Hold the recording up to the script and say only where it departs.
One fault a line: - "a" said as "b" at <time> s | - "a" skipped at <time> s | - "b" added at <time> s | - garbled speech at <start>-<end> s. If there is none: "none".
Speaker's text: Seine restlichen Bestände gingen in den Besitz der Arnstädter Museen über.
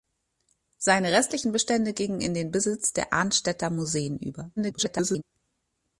- garbled speech at 4.6-5.2 s